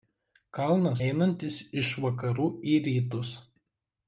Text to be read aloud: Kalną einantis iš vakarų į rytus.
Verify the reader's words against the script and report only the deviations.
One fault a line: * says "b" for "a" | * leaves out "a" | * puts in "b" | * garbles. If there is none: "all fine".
all fine